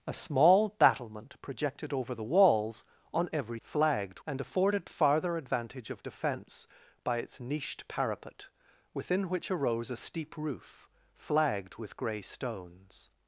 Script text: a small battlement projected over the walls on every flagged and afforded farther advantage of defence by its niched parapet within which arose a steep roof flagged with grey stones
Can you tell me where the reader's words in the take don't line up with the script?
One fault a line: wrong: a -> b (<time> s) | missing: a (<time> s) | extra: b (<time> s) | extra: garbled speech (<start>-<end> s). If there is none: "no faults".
no faults